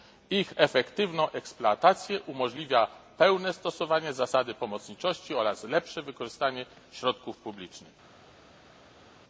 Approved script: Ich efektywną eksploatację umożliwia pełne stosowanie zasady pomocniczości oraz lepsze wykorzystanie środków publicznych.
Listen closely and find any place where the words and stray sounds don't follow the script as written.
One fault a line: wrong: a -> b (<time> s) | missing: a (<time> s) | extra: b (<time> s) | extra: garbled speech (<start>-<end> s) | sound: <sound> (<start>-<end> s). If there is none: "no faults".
no faults